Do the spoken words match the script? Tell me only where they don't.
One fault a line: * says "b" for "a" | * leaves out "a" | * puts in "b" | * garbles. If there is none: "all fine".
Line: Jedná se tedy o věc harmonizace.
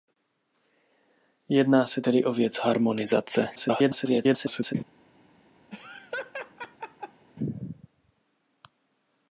* garbles